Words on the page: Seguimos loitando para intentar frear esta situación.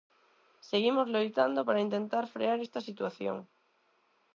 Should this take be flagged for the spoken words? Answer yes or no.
no